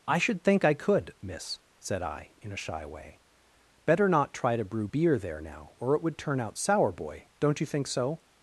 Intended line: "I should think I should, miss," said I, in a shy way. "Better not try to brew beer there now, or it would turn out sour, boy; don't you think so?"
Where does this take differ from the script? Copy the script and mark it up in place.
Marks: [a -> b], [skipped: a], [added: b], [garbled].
"I should think I [should, -> could] miss," said I, in a shy way. "Better not try to brew beer there now, or it would turn out sour, boy; don't you think so?"